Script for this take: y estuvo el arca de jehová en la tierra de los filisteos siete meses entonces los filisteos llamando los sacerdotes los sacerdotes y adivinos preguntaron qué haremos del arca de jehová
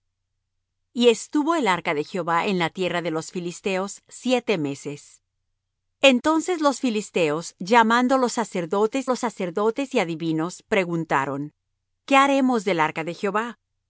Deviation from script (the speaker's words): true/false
false